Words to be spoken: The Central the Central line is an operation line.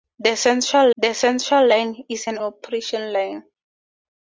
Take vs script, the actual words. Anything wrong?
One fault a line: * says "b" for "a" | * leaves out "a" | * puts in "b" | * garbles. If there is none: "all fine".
all fine